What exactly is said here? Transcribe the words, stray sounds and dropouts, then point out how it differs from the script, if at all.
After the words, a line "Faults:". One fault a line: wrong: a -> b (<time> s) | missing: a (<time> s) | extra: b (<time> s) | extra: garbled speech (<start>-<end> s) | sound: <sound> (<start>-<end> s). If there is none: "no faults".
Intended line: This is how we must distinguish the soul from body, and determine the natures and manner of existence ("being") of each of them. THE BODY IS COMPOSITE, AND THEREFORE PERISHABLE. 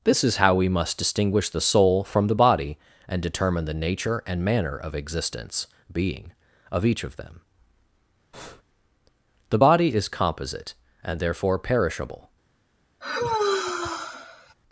This is how we must distinguish the soul from the body, and determine the nature and manner of existence ("being") of each of them. THE BODY IS COMPOSITE, AND THEREFORE PERISHABLE.
Faults:
extra: the (2.2 s)
wrong: natures -> nature (3.7 s)
sound: breath (8.3-8.6 s)
sound: sigh (13.0-14.5 s)